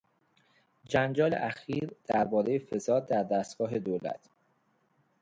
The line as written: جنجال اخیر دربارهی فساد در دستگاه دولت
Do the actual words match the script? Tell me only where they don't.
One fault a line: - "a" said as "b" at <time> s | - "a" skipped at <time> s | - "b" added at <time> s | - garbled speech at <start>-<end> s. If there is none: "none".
none